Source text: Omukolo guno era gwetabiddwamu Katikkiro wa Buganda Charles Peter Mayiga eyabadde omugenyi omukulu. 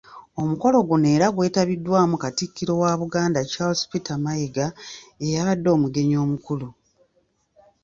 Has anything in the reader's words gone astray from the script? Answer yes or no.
no